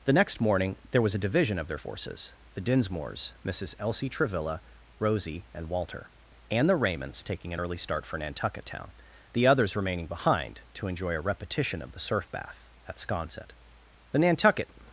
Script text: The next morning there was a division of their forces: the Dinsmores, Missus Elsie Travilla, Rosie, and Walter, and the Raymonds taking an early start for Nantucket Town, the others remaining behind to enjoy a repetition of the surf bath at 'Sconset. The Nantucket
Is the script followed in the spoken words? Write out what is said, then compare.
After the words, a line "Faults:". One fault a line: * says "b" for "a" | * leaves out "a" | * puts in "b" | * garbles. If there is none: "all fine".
The next morning there was a division of their forces: the Dinsmores, Missus Elsie Travilla, Rosie, and Walter, and the Raymonds taking an early start for Nantucket Town, the others remaining behind to enjoy a repetition of the surf bath at 'Sconset. The Nantucket
Faults:
all fine